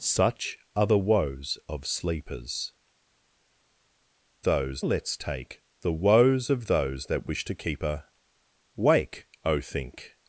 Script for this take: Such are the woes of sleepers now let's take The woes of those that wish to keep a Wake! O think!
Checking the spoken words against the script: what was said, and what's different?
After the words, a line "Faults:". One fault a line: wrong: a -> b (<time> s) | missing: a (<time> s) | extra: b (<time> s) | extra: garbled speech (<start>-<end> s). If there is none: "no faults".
Such are the woes of sleepers those let's take The woes of those that wish to keep a Wake! O think!
Faults:
wrong: now -> those (4.4 s)